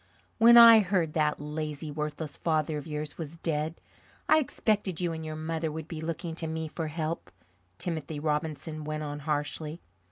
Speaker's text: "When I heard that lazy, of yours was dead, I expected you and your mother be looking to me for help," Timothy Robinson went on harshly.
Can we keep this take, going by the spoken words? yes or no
no